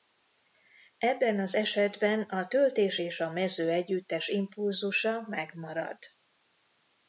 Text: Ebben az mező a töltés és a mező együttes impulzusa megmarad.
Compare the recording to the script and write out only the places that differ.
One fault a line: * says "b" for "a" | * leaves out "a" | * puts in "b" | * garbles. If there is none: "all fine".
* says "esetben" for "mező"